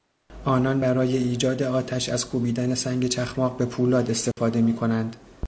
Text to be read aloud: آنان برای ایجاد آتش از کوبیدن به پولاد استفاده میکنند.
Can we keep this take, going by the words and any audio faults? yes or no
no